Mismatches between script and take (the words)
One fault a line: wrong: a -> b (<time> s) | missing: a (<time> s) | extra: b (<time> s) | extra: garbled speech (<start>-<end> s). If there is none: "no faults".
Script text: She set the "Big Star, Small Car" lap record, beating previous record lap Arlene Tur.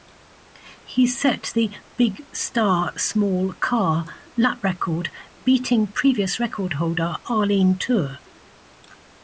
wrong: She -> He (0.8 s)
wrong: lap -> holder (6.7 s)